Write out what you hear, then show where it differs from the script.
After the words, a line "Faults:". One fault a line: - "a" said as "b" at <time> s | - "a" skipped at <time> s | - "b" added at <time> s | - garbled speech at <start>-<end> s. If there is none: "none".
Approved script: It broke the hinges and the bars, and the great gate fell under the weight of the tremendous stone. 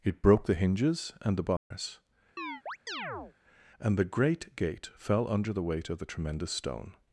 It broke the hinges and the bars, and the great gate fell under the weight of the tremendous stone.
Faults:
none